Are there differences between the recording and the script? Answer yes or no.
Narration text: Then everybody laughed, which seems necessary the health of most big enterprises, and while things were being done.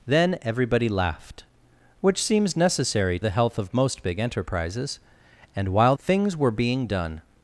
no